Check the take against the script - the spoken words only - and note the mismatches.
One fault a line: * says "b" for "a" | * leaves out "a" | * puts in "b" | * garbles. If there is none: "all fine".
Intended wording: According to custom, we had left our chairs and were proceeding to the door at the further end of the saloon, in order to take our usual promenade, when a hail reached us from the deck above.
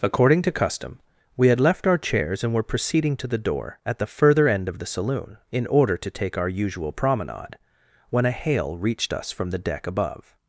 all fine